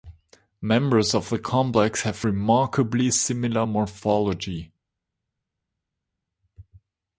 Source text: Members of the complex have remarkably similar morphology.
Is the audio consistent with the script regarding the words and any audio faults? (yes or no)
yes